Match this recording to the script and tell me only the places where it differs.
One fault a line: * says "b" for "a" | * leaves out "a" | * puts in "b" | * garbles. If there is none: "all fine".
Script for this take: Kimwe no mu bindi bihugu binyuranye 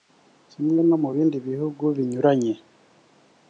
all fine